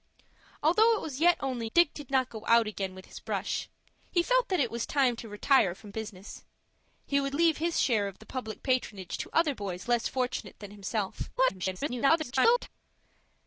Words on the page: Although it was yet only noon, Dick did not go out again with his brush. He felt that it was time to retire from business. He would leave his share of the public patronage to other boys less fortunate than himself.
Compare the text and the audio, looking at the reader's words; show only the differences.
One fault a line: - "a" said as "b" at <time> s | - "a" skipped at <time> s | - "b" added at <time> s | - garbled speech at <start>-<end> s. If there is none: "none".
- "noon" skipped at 1.7 s
- garbled speech at 11.4-12.7 s